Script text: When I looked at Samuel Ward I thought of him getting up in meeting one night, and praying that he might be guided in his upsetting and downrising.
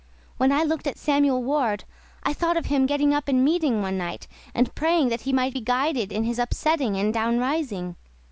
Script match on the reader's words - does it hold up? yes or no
yes